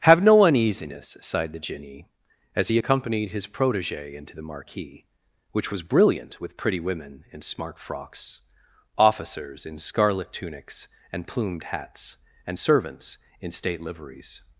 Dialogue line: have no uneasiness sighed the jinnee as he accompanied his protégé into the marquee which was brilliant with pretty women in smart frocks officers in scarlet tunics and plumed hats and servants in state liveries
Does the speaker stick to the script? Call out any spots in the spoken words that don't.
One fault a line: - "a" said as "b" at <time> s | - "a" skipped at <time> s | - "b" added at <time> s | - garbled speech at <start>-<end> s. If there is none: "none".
none